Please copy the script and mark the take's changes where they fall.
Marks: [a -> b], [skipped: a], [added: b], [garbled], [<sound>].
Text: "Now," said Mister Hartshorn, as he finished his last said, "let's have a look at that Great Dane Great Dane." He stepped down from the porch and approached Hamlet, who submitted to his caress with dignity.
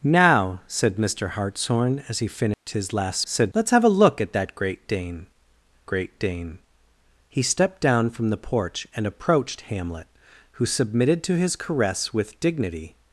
"Now," said Mister Hartshorn, as he finished [dropout] his last said, "let's have a look at that Great Dane Great Dane." He stepped down from the porch and approached Hamlet, who submitted to his caress with dignity.